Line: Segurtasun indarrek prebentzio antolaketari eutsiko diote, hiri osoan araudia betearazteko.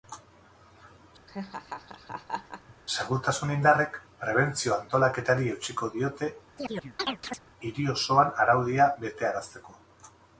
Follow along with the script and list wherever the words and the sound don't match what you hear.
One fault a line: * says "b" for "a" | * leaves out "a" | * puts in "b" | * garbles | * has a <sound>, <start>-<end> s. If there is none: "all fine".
* has a laugh, 1.3-2.7 s
* has a chirp, 6.6-7.4 s